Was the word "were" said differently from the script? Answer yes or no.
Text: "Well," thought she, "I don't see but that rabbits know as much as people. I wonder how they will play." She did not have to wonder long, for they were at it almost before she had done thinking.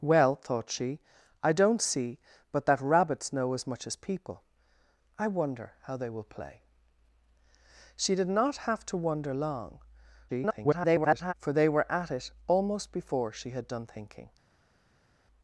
no